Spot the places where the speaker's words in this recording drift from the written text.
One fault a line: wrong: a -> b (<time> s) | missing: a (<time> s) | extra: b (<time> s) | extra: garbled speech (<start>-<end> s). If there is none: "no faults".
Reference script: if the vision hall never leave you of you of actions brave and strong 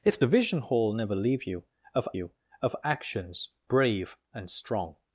no faults